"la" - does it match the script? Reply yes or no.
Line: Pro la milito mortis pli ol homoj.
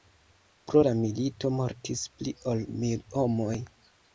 yes